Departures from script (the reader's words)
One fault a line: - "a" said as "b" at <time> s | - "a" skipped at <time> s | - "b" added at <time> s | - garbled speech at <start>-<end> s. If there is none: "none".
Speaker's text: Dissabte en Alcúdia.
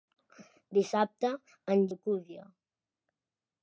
none